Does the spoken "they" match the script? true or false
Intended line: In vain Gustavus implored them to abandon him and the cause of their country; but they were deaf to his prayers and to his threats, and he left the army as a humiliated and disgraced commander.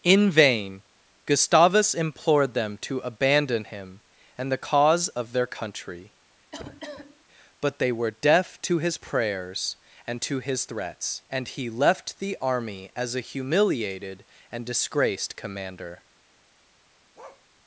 true